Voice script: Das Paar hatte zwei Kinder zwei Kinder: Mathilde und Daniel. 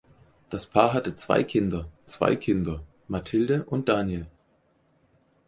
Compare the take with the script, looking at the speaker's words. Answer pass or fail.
pass